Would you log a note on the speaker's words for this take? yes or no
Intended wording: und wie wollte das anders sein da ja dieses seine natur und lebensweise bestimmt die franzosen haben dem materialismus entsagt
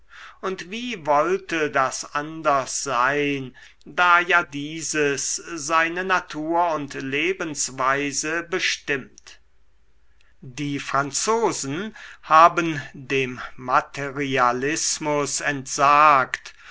no